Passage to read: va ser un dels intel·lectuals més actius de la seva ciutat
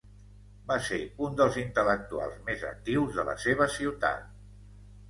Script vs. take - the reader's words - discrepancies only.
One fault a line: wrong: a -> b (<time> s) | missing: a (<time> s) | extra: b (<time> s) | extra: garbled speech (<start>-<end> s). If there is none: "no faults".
no faults